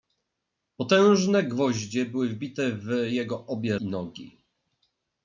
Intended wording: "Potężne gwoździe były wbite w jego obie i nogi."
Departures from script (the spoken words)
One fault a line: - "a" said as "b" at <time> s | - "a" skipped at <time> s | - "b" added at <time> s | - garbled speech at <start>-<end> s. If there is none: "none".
none